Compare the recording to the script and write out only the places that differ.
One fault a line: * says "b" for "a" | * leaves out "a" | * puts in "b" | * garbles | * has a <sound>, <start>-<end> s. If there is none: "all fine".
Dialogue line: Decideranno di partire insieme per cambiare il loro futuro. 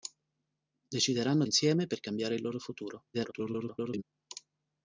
* leaves out "di partire"
* garbles